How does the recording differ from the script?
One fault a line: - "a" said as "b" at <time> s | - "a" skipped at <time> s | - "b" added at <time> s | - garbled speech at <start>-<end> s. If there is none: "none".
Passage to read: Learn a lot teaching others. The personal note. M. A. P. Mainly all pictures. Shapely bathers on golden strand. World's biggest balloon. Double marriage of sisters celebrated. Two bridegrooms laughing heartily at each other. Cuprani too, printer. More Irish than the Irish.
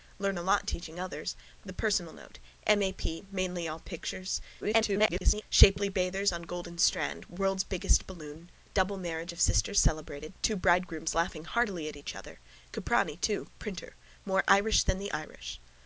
- garbled speech at 4.6-5.4 s